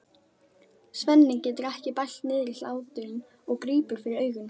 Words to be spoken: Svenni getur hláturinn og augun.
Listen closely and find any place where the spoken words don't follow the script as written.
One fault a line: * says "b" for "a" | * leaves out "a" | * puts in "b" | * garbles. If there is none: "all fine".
* puts in "ekki bælt niðri"
* puts in "grípur fyrir"